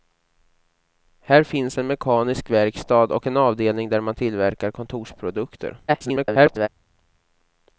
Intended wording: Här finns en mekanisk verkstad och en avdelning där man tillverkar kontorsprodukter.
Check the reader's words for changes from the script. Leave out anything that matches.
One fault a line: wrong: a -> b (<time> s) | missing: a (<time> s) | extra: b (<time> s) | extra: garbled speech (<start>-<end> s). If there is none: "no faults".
extra: garbled speech (5.9-6.7 s)